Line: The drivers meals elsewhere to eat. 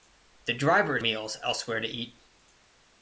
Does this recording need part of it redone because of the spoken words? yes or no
no